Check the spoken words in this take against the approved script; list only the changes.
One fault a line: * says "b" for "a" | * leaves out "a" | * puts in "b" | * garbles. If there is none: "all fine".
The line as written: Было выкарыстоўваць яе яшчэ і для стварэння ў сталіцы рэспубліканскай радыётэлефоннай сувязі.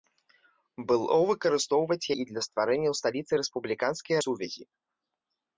* leaves out "яе яшчэ"
* leaves out "радыётэлефоннай"